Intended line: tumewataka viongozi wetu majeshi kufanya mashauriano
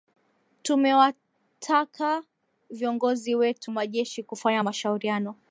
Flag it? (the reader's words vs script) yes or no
no